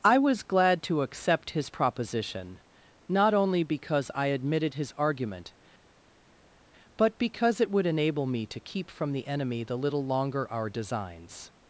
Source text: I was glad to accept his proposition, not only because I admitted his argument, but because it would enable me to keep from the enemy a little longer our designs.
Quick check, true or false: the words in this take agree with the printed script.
false